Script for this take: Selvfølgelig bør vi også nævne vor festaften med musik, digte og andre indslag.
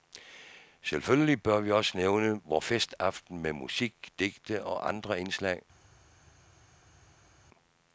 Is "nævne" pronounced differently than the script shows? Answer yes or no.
no